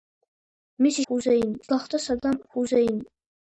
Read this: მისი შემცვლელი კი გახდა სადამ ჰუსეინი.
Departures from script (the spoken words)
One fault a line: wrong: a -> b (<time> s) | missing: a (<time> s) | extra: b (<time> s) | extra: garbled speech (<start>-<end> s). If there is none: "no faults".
wrong: შემცვლელი -> ჰუსეინი (1.1 s)